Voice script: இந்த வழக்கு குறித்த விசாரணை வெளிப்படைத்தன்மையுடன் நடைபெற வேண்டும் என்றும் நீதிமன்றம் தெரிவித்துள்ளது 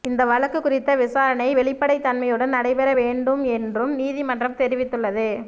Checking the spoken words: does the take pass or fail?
pass